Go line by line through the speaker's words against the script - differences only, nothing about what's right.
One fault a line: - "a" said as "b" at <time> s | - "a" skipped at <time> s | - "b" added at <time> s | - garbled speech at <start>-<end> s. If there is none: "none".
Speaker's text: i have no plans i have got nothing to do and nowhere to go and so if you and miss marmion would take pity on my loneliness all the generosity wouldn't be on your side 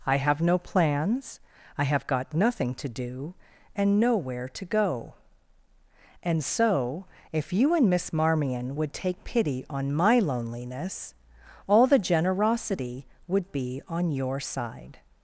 - "wouldn't" said as "would" at 13.3 s